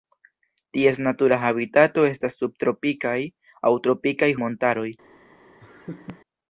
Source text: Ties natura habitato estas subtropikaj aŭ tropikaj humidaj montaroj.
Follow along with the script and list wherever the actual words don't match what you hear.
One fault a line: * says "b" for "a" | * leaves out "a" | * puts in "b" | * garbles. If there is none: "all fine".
* leaves out "humidaj"